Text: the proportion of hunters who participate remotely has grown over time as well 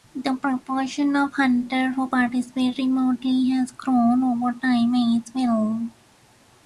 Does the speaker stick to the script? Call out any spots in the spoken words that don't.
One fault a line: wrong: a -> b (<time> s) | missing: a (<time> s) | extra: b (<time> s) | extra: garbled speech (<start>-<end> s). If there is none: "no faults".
no faults